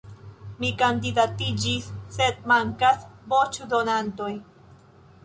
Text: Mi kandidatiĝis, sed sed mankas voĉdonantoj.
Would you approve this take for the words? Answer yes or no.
no